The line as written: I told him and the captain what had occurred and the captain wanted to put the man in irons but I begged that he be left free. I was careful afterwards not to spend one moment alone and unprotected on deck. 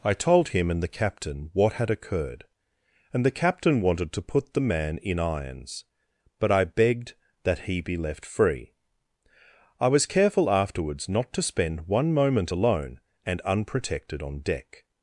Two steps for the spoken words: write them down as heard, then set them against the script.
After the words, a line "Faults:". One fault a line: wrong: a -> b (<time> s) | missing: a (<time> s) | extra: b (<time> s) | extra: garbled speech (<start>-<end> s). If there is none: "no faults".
I told him and the captain what had occurred and the captain wanted to put the man in irons but I begged that he be left free. I was careful afterwards not to spend one moment alone and unprotected on deck.
Faults:
no faults